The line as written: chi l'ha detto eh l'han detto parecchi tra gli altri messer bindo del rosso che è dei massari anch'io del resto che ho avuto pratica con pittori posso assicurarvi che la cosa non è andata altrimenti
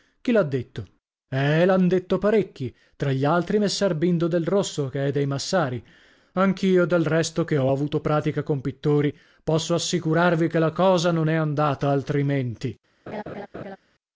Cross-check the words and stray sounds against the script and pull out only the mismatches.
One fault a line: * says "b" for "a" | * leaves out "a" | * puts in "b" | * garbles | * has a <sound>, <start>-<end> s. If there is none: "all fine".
* has a laugh, 13.1-13.8 s